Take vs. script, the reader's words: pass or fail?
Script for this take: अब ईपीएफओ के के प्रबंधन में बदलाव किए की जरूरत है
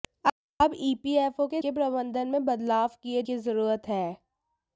pass